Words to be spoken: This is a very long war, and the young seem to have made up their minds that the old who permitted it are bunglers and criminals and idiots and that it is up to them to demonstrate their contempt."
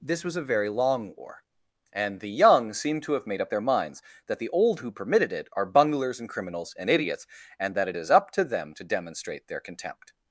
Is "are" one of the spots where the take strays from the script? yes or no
no